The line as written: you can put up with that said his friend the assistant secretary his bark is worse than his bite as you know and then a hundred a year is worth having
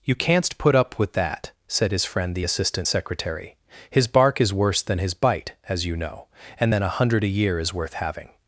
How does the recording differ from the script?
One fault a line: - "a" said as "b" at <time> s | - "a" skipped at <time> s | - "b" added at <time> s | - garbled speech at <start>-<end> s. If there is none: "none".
- "can" said as "canst" at 0.1 s